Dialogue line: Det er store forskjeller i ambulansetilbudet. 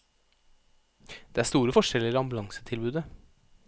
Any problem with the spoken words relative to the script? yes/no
no